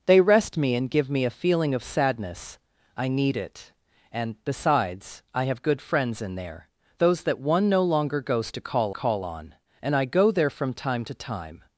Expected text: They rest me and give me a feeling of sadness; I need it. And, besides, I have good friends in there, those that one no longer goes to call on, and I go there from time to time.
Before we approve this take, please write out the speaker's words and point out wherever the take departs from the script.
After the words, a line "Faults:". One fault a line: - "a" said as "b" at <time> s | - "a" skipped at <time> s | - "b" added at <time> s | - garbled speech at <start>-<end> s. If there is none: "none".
They rest me and give me a feeling of sadness; I need it. And, besides, I have good friends in there, those that one no longer goes to call call on, and I go there from time to time.
Faults:
- "call" added at 8.9 s